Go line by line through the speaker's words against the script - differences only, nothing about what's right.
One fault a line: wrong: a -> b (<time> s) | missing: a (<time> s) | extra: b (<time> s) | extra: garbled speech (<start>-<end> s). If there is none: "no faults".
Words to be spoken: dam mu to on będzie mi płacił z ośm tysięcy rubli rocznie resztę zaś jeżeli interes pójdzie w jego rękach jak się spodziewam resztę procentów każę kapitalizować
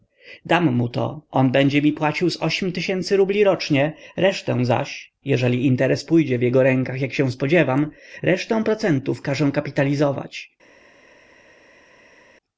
no faults